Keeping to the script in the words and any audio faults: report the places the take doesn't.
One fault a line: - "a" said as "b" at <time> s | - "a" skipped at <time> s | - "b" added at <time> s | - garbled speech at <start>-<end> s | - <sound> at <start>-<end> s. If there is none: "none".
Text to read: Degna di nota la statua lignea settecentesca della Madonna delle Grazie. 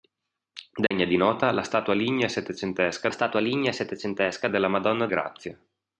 - dropout at 0.9-0.9 s
- "statua lignea settecentesca" added at 3.1 s
- "delle" skipped at 5.1 s